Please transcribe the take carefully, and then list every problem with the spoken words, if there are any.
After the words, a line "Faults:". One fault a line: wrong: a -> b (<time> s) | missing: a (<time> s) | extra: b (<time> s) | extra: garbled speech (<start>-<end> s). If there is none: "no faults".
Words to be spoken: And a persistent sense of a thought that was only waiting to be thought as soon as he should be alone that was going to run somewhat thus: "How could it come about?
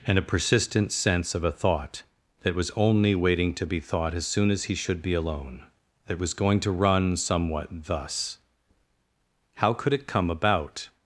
And a persistent sense of a thought that was only waiting to be thought as soon as he should be alone that was going to run somewhat thus: "How could it come about?
Faults:
no faults